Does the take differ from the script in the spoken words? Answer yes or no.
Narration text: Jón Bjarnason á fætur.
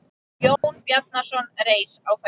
yes